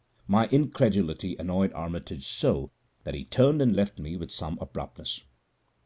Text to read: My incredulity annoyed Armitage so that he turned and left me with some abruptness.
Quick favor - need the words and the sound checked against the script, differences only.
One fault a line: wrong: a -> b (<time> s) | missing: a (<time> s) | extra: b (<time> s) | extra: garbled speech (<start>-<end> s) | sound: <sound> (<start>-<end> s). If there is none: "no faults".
no faults